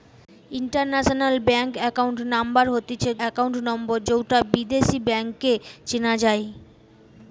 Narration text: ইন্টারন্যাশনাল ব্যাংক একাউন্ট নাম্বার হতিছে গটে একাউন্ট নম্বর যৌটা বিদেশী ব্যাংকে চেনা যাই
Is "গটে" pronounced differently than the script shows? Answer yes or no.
yes